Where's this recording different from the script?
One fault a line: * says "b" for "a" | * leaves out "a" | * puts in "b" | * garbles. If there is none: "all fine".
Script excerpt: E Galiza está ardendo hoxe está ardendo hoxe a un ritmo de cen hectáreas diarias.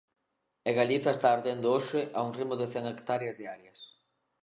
* leaves out "está ardendo hoxe"